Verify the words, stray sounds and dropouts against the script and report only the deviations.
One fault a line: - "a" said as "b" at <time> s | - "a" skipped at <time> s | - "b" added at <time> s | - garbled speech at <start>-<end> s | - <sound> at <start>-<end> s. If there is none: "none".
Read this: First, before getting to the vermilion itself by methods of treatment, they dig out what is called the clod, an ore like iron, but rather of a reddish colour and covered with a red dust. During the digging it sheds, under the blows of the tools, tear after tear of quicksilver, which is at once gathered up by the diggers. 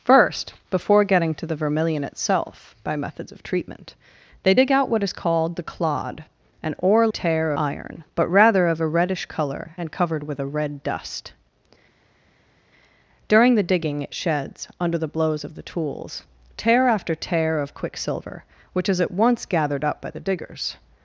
- "like" said as "tear" at 7.1 s